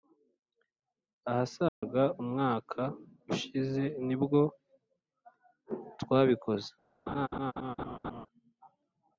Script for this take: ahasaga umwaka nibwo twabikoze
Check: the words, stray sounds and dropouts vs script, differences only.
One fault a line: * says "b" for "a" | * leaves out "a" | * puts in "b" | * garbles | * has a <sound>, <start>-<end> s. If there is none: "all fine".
* has a dropout, 1.7-1.8 s
* puts in "ushize"
* has a laugh, 7.1-8.3 s